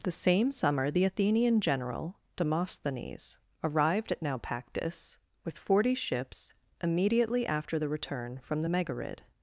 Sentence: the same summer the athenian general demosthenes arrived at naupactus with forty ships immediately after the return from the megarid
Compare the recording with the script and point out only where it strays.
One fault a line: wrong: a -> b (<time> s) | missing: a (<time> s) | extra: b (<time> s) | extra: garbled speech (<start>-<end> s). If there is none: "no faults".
no faults